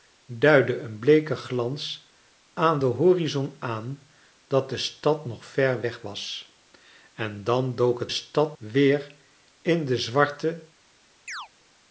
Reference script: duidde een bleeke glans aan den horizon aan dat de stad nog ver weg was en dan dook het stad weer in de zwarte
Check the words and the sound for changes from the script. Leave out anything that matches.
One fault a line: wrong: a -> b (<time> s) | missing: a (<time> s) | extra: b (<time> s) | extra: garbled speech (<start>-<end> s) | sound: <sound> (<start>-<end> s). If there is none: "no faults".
sound: chirp (11.3-11.5 s)